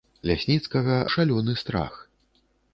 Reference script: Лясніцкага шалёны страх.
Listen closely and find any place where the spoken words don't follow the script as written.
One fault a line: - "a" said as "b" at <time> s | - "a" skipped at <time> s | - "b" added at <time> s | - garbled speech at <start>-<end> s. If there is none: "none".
none